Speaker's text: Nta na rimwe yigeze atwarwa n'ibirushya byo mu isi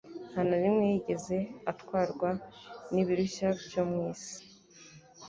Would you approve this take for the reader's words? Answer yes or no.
yes